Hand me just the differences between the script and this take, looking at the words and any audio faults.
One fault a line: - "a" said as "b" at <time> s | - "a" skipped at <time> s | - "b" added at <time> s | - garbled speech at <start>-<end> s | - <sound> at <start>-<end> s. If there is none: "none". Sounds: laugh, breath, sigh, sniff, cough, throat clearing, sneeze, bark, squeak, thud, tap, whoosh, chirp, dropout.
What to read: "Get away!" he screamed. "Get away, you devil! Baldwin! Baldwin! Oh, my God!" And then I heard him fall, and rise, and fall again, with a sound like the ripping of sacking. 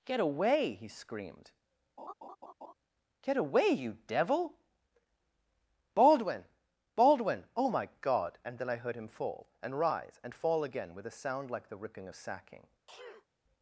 - laugh at 2.0-2.7 s
- sneeze at 12.9-13.3 s